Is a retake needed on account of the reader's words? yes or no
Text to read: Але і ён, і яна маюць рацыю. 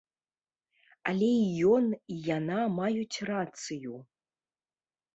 no